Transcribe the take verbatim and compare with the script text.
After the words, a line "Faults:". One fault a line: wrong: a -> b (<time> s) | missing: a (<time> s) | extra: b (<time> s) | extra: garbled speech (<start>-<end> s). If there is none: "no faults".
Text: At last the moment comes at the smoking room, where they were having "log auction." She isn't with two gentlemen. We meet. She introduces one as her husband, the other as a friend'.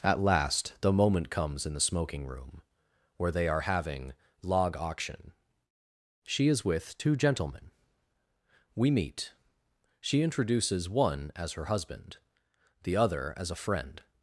At last the moment comes in the smoking room, where they are having "log auction." She is with two gentlemen. We meet. She introduces one as her husband, the other as a friend'.
Faults:
wrong: at -> in (1.6 s)
wrong: were -> are (3.5 s)
wrong: isn't -> is (6.5 s)